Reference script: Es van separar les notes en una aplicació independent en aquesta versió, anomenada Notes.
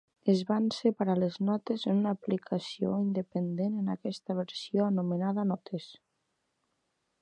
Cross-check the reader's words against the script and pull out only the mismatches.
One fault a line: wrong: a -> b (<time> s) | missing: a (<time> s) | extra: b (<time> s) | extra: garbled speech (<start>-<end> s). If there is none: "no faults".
no faults